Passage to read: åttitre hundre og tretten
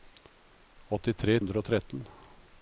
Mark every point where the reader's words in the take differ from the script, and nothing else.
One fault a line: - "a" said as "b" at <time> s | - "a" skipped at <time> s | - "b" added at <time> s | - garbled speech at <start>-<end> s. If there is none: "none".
none